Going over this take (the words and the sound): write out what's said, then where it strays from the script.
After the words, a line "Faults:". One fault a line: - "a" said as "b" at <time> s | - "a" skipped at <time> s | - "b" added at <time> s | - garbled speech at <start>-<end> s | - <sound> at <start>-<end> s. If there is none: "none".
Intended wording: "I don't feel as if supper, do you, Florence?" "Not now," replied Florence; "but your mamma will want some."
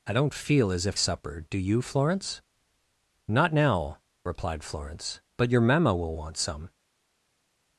"I don't feel as if supper, do you, Florence?" "Not now," replied Florence; "but your mamma will want some."
Faults:
none